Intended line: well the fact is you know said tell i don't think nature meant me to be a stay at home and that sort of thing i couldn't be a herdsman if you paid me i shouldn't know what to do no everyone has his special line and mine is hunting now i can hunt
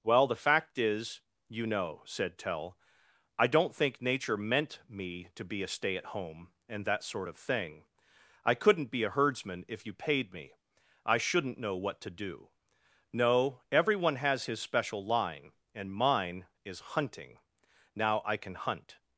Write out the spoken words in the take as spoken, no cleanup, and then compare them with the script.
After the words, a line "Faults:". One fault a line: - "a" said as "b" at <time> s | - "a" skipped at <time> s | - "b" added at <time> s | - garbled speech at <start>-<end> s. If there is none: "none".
well the fact is you know said tell i don't think nature meant me to be a stay at home and that sort of thing i couldn't be a herdsman if you paid me i shouldn't know what to do no everyone has his special line and mine is hunting now i can hunt
Faults:
none